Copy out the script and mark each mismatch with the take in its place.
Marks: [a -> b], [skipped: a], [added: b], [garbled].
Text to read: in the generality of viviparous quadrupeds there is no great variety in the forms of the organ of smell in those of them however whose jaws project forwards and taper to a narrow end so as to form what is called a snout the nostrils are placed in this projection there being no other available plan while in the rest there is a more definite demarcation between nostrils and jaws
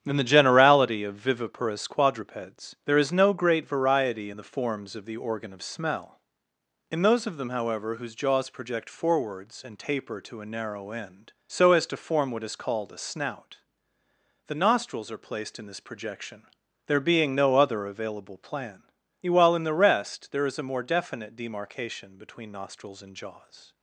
in the generality of viviparous quadrupeds there is no great variety in the forms of the organ of smell in those of them however whose jaws project forwards and taper to a narrow end so as to form what is called a snout the nostrils are placed in this projection there being no other available plan while in the rest there is a more definite demarcation between nostrils and jaws